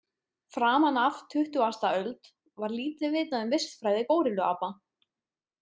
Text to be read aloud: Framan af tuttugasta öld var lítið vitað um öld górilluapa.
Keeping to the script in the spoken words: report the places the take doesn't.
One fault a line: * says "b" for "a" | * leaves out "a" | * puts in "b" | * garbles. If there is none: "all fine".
* says "vistfræði" for "öld"